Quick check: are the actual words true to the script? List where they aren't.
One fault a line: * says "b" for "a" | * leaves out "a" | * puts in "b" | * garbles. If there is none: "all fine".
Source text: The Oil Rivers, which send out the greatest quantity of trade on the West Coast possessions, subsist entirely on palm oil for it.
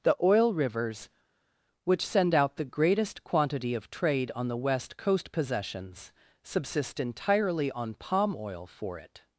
all fine